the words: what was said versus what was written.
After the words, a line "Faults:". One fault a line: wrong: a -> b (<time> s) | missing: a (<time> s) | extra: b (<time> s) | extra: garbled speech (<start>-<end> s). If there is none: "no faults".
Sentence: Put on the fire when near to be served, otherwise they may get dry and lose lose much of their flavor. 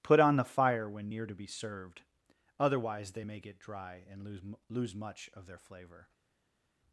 Put on the fire when near to be served, otherwise they may get dry and lose lose much of their flavor.
Faults:
no faults